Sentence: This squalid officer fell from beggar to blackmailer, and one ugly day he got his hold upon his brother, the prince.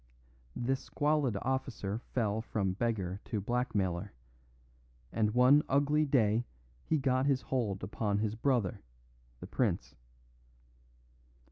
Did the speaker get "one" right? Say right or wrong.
right